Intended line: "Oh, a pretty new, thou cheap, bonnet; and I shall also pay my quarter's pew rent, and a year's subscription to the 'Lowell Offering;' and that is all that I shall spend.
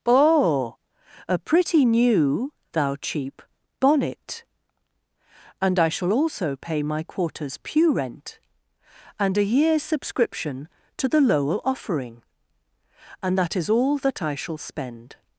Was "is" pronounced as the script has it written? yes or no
yes